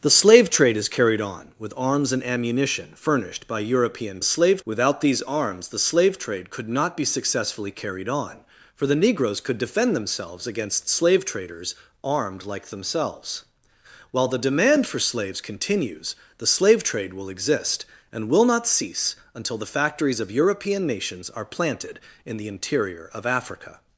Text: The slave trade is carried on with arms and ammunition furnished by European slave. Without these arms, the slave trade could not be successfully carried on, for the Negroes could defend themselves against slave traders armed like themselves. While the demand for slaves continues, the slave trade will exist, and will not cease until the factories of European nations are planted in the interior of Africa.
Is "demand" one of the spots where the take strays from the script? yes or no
no